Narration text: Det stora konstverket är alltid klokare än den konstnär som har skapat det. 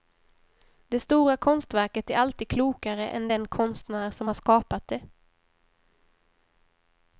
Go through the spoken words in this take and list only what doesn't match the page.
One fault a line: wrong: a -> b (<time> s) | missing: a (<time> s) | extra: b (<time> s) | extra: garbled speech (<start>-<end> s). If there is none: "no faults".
no faults